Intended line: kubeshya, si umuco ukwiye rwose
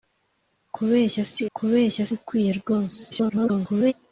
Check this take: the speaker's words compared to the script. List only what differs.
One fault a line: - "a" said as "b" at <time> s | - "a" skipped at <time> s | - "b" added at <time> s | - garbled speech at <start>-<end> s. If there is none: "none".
- "umuco" said as "kubeshya" at 1.6 s
- garbled speech at 3.1-3.9 s